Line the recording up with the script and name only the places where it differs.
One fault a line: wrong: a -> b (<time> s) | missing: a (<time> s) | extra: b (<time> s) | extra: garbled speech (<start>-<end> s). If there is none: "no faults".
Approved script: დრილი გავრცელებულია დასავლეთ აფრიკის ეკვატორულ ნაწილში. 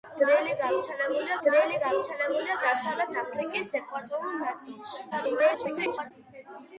extra: დრილი გავრცელებულია (1.4 s)
extra: garbled speech (5.1-6.1 s)